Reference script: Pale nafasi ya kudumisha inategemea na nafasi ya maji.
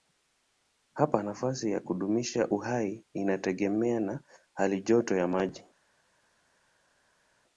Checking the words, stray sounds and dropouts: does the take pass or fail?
fail